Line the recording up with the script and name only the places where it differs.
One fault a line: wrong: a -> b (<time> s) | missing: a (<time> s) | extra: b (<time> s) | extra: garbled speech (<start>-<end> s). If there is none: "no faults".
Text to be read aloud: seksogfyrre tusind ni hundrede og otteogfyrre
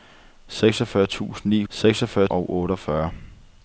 wrong: hundrede -> seksogfyrre (1.7 s)